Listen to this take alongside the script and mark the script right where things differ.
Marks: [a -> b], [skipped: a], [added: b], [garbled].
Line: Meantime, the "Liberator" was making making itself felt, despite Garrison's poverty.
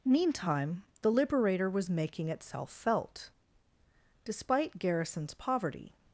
Meantime, the "Liberator" was making [skipped: making] itself felt, despite Garrison's poverty.